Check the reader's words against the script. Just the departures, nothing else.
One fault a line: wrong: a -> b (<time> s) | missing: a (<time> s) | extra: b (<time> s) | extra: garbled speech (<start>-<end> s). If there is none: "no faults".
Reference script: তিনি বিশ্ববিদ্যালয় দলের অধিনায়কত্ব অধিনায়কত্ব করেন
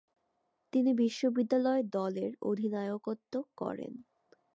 missing: অধিনায়কত্ব (3.3 s)